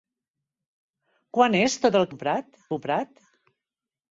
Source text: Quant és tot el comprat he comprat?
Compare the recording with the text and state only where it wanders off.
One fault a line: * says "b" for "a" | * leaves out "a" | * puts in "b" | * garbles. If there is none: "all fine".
all fine